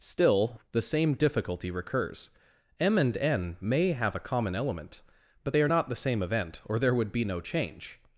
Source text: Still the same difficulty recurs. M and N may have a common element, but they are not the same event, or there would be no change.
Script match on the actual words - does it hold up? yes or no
yes